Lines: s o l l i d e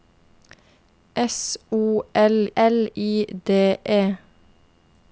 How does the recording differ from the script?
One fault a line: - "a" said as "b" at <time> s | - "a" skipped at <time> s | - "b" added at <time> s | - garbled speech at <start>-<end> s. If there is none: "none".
none